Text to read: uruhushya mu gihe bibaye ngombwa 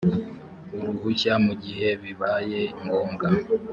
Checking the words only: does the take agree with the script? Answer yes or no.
yes